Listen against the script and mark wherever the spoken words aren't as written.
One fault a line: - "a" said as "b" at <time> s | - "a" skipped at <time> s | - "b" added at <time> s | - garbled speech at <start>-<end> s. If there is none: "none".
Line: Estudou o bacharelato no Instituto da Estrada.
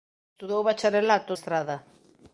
- "no Instituto da" skipped at 1.3 s